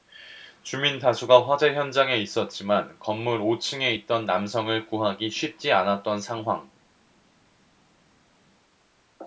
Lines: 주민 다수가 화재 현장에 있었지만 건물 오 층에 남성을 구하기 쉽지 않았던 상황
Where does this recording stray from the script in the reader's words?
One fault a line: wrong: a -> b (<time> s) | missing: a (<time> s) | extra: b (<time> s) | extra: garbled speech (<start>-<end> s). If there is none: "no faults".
extra: 있던 (3.9 s)